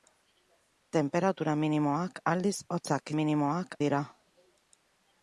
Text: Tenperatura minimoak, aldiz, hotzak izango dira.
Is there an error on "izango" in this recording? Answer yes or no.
yes